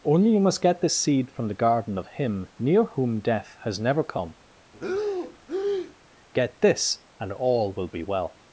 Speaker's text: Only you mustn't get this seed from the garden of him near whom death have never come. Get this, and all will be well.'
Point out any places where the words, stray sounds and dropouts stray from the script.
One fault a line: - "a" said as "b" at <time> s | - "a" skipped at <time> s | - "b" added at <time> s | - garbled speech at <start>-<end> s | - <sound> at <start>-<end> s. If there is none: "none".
- "mustn't" said as "must" at 0.4 s
- "have" said as "has" at 3.6 s
- breath at 4.7-6.0 s